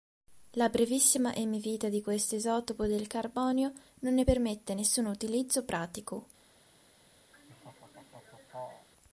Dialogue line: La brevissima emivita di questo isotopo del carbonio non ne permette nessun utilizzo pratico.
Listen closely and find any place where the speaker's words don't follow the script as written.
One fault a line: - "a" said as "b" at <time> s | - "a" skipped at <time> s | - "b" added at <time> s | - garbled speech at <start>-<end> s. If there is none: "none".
none